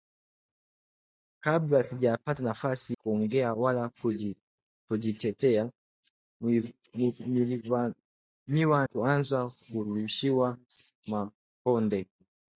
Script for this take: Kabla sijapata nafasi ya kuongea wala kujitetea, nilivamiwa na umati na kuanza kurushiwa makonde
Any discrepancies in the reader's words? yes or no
yes